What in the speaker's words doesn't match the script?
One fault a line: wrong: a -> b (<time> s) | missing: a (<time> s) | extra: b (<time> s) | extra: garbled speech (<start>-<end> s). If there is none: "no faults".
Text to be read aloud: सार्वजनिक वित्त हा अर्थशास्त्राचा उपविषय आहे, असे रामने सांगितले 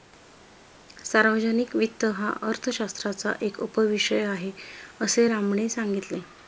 extra: एक (3.4 s)